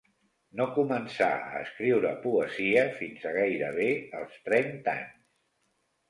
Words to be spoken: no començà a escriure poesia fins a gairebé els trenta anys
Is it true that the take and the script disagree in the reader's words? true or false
false